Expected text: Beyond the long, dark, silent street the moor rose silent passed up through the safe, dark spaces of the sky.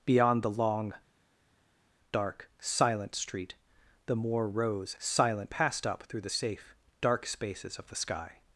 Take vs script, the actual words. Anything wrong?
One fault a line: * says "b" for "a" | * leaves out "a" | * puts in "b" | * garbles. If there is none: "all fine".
all fine